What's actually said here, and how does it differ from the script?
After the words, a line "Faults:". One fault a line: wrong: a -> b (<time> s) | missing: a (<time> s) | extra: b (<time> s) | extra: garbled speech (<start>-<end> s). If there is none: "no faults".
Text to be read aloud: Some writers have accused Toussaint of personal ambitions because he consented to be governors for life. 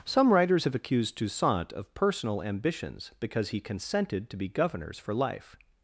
Some writers have accused Toussaint of personal ambitions because he consented to be governors for life.
Faults:
no faults